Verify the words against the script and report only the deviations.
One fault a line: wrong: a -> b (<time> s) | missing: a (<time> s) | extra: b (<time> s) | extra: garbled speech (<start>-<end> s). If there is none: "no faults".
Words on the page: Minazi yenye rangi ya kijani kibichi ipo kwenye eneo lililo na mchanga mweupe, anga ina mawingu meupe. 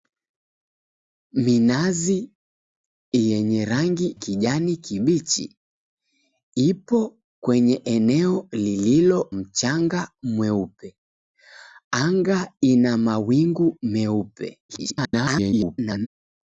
missing: ya (4.2 s)
missing: na (9.3 s)
extra: garbled speech (14.7-16.1 s)